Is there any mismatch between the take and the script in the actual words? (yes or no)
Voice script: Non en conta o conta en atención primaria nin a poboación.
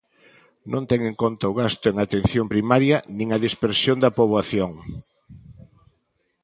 yes